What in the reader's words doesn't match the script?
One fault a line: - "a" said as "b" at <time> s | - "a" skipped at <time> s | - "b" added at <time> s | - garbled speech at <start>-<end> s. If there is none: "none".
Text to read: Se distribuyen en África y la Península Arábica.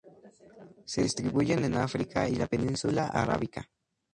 none